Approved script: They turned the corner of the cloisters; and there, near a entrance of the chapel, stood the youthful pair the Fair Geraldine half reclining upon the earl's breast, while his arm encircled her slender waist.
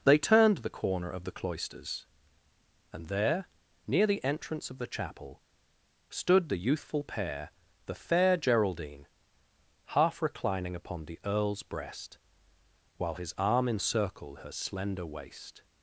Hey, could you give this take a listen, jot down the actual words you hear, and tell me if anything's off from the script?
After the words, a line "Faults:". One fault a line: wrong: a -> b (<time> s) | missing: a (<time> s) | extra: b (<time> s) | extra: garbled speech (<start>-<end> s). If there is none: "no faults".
They turned the corner of the cloisters; and there, near the entrance of the chapel, stood the youthful pair the Fair Geraldine half reclining upon the earl's breast, while his arm encircled her slender waist.
Faults:
wrong: a -> the (4.1 s)